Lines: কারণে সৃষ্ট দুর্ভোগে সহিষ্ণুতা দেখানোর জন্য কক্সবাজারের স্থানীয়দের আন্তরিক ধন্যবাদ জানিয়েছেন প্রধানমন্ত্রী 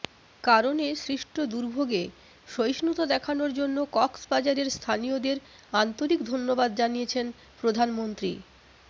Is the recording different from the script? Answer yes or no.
no